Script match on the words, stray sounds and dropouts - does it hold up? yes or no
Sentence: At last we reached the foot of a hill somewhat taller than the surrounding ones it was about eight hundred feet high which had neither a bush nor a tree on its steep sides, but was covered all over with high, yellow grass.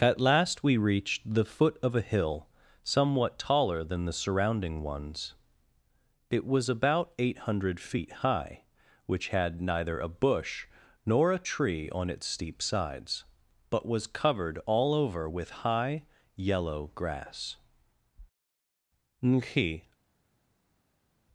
no